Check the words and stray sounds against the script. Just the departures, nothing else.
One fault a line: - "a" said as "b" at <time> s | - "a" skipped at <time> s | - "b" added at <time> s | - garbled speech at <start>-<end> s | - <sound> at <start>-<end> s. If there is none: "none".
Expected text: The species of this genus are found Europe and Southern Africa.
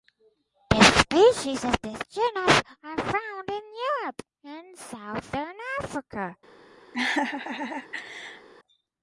- "in" added at 3.5 s
- laugh at 6.9-8.5 s